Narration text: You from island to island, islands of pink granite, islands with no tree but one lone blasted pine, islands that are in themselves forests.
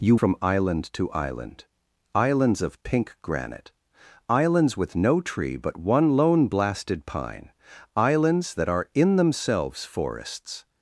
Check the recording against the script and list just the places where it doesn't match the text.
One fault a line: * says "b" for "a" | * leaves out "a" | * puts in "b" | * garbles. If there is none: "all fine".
all fine